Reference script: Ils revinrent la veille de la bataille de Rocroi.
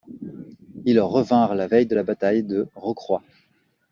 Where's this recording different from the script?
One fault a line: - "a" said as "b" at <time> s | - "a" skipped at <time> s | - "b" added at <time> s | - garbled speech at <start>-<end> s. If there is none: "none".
none